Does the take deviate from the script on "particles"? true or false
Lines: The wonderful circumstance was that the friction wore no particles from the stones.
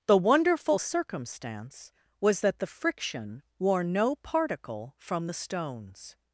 true